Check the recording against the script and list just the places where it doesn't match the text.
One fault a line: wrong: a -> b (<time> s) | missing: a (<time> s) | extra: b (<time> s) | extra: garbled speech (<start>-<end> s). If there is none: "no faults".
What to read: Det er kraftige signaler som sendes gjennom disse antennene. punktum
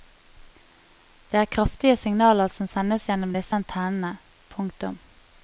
no faults